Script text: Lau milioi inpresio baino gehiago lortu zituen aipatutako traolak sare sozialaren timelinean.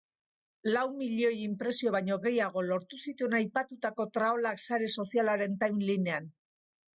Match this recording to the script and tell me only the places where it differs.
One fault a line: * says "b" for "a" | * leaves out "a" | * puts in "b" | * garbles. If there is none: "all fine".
all fine